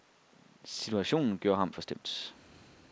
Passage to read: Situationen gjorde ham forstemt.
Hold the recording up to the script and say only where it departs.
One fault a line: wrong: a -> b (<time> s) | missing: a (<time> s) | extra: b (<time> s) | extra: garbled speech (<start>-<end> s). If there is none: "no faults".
no faults